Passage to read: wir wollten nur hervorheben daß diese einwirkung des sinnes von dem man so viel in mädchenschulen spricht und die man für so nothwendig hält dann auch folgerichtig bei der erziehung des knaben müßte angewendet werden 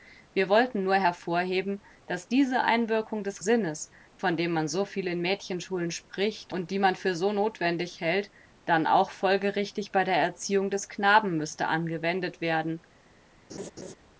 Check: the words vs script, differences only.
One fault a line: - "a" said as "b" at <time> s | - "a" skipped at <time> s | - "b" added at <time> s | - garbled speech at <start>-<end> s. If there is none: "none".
none